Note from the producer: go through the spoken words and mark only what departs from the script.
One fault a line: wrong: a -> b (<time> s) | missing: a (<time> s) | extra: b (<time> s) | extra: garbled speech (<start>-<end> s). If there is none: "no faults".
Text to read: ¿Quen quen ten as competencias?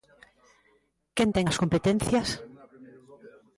missing: quen (1.3 s)